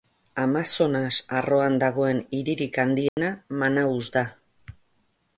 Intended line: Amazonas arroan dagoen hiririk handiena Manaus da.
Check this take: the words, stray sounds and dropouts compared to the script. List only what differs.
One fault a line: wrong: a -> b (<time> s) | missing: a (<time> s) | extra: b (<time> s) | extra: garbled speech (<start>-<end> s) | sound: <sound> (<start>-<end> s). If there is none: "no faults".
sound: dropout (3.1-3.2 s)